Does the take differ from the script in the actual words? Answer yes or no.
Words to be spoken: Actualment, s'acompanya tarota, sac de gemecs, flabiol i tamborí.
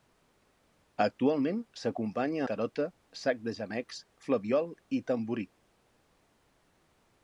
no